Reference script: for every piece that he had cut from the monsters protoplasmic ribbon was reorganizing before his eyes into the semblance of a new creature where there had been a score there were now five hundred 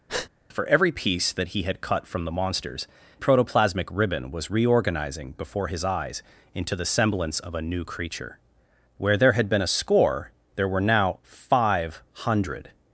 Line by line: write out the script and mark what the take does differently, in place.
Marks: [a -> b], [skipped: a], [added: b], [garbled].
for every piece that he had cut from the monsters protoplasmic ribbon was reorganizing before his eyes into the semblance of a new creature where there had been a score there were now five hundred